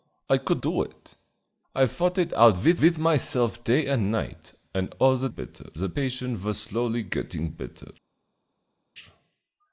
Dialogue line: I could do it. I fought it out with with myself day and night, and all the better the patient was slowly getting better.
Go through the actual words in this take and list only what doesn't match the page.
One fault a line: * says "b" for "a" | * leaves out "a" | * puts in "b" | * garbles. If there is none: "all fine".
all fine